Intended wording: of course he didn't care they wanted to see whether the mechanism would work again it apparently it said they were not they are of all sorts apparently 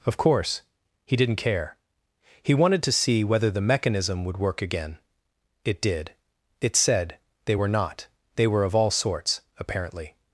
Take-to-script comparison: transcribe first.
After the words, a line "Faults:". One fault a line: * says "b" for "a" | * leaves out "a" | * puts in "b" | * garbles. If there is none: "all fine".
of course he didn't care he wanted to see whether the mechanism would work again it did it said they were not they were of all sorts apparently
Faults:
* says "he" for "they"
* says "did" for "apparently"
* says "were" for "are"